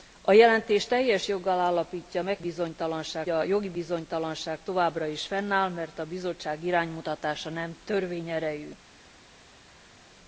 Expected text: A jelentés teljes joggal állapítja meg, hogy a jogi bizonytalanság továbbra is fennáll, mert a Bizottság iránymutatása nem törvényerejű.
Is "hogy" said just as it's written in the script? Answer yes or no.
no